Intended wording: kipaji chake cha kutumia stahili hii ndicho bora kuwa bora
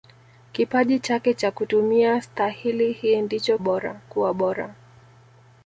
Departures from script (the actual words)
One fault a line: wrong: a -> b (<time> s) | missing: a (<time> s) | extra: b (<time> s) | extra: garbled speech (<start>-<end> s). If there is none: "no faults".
no faults